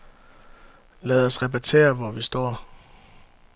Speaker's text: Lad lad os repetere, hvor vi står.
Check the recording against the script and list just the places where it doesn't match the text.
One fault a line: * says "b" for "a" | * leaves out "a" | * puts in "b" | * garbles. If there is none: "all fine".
* leaves out "lad"